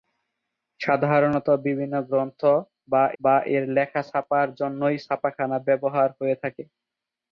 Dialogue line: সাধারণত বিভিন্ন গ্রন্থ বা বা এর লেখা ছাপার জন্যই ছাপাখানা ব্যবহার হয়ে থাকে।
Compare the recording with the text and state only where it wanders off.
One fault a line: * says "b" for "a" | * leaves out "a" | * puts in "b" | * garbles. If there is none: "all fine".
all fine